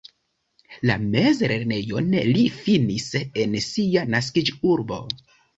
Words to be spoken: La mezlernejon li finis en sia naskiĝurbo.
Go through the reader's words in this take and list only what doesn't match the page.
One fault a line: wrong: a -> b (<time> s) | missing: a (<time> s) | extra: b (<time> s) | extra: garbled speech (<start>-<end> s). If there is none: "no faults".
no faults